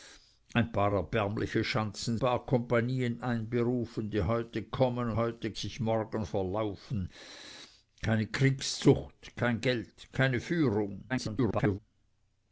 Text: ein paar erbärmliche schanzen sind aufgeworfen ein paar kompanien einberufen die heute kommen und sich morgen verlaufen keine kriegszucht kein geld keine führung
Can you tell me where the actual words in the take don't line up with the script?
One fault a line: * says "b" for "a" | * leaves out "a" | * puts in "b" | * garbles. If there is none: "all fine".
* leaves out "sind aufgeworfen ein"
* says "heute" for "und"
* garbles